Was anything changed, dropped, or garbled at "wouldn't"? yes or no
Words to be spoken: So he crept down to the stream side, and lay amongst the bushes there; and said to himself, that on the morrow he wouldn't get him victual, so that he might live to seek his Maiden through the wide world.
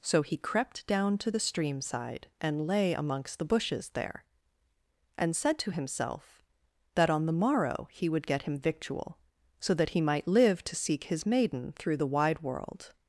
yes